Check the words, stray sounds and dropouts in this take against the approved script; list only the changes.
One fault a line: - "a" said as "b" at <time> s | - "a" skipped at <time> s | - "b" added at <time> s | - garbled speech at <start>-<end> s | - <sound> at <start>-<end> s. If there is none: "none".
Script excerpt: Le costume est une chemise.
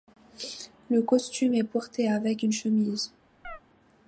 - "porté avec" added at 1.6 s
- chirp at 3.4-3.6 s